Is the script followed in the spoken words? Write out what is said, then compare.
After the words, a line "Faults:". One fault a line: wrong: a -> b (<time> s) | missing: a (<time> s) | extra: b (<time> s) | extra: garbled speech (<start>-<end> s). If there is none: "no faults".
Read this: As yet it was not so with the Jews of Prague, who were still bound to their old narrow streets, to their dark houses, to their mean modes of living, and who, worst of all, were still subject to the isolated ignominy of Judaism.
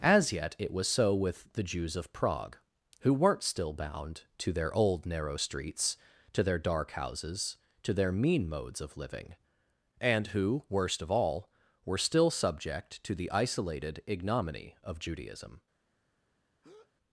As yet it was so with the Jews of Prague, who weren't still bound to their old narrow streets, to their dark houses, to their mean modes of living, and who, worst of all, were still subject to the isolated ignominy of Judaism.
Faults:
missing: not (0.9 s)
wrong: were -> weren't (3.1 s)